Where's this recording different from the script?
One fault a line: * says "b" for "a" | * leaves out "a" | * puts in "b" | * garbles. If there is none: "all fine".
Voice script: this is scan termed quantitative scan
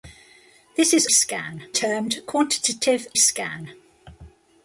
all fine